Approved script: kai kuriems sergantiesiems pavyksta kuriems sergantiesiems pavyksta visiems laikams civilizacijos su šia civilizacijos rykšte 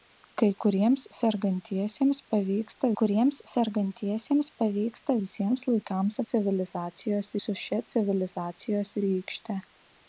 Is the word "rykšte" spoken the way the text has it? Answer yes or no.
yes